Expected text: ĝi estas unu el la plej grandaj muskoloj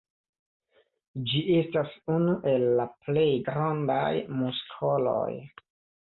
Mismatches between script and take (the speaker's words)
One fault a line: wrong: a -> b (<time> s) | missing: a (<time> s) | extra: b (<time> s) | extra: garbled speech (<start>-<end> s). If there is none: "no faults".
no faults